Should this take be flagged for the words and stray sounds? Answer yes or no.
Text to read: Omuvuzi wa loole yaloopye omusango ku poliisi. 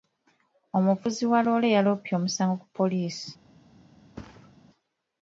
yes